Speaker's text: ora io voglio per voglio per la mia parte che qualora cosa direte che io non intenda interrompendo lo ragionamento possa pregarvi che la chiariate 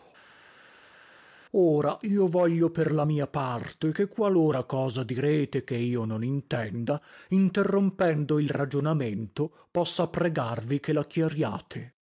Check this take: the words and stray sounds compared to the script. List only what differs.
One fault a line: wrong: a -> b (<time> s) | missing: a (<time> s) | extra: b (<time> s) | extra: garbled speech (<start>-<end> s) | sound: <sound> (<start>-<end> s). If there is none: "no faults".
missing: voglio per (2.9 s)
wrong: lo -> il (8.4 s)